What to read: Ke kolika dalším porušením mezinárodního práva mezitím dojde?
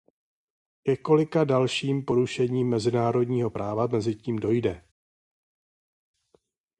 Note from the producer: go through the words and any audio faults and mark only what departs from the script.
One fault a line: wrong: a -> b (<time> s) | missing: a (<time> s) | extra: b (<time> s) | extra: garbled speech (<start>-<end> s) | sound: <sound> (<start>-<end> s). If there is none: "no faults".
no faults